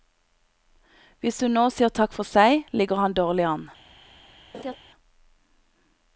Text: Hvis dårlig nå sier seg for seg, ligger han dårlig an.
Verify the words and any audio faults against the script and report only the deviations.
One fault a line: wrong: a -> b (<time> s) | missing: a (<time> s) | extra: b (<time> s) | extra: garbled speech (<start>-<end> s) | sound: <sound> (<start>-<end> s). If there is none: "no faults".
wrong: dårlig -> hun (1.4 s)
wrong: seg -> takk (2.0 s)
sound: laugh (4.5-4.8 s)